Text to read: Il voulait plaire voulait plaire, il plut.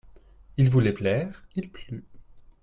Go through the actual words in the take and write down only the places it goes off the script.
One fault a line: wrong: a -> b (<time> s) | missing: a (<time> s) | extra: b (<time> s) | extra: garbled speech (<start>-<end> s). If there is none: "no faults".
missing: voulait plaire (1.4 s)